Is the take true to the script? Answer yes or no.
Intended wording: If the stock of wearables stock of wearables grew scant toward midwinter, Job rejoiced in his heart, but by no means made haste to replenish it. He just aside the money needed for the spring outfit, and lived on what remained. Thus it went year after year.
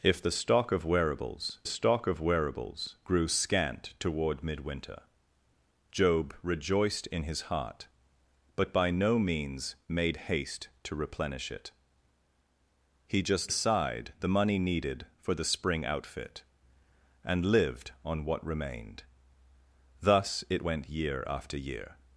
yes